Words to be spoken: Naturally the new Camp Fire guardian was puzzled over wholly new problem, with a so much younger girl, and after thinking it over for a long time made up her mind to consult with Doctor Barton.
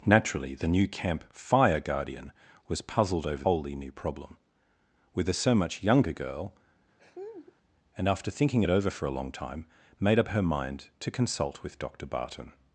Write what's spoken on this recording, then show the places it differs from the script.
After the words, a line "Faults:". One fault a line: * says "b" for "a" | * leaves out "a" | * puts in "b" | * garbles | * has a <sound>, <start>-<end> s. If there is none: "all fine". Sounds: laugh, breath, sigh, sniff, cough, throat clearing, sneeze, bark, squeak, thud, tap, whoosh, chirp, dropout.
Naturally the new Camp Fire guardian was puzzled over wholly new problem, with a so much younger girl, and after thinking it over for a long time made up her mind to consult with Doctor Barton.
Faults:
* has a laugh, 7.0-7.6 s